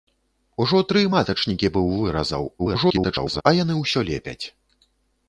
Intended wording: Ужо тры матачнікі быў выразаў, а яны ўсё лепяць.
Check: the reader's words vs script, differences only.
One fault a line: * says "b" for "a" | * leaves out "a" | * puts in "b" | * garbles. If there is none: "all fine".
* garbles